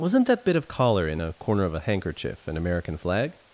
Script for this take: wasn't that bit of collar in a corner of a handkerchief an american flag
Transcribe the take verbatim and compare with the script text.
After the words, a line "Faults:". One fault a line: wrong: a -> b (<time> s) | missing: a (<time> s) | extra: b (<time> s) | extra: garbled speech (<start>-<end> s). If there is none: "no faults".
wasn't that bit of collar in a corner of a handkerchief an american flag
Faults:
no faults